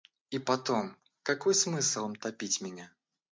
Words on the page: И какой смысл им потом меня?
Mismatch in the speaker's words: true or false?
true